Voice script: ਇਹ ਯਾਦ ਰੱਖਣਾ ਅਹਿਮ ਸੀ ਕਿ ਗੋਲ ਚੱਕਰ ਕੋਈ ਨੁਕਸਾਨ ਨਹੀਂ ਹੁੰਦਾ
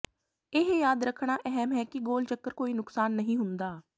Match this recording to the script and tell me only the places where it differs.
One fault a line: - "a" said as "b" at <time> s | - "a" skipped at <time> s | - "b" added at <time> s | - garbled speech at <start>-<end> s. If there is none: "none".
- "ਸੀ" said as "ਹੈ" at 1.7 s